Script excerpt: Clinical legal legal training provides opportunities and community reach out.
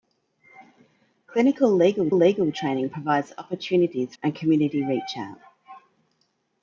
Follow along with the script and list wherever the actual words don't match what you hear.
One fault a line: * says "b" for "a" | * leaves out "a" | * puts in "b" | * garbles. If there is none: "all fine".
all fine